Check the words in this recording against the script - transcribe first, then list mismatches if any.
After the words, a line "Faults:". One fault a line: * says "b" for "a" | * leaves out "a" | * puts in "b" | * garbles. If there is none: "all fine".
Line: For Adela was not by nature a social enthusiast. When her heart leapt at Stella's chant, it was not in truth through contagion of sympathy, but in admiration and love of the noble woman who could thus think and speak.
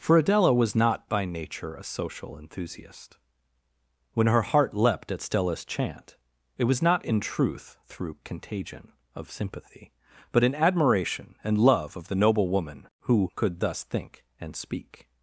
For Adela was not by nature a social enthusiast. When her heart leapt at Stella's chant, it was not in truth through contagion of sympathy, but in admiration and love of the noble woman who could thus think and speak.
Faults:
all fine